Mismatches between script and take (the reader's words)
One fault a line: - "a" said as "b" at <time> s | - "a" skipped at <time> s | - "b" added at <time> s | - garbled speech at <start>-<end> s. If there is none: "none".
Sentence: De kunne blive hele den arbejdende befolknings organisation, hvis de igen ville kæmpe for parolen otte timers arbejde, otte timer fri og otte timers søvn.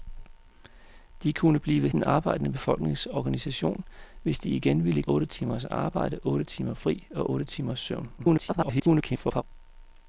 - "hele" skipped at 1.9 s
- "kæmpe for parolen" skipped at 5.0 s
- garbled speech at 8.2-9.4 s